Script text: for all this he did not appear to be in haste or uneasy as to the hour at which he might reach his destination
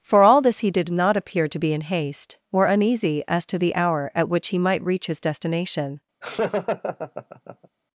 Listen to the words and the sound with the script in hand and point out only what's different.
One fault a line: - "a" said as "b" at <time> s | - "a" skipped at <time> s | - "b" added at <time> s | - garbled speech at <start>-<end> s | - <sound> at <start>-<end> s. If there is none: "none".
- laugh at 6.2-7.7 s